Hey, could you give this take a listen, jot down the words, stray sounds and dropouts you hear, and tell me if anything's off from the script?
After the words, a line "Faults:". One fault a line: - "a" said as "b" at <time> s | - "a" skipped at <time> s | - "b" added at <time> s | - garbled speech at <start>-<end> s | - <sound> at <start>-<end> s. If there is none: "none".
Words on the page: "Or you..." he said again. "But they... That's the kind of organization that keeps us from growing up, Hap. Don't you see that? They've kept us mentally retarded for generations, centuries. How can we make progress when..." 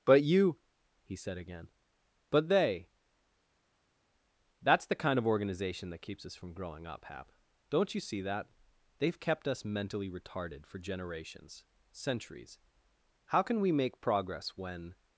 "But you..." he said again. "But they... That's the kind of organization that keeps us from growing up, Hap. Don't you see that? They've kept us mentally retarded for generations, centuries. How can we make progress when..."
Faults:
- "Or" said as "But" at 0.1 s